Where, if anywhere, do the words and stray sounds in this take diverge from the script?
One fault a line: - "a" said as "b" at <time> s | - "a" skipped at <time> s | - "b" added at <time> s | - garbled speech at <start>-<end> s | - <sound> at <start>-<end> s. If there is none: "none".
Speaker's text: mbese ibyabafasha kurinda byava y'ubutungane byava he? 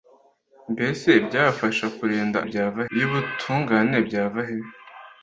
none